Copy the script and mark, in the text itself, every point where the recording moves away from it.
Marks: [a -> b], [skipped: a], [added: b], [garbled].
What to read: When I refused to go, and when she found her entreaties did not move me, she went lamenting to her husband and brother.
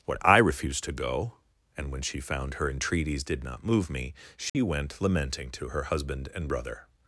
[When -> What] I refused to go, and when she found her entreaties did not move me, she went lamenting to her husband and brother.